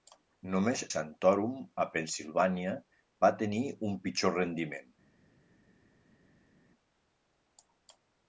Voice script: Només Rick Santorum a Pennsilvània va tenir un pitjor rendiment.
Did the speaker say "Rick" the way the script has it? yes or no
no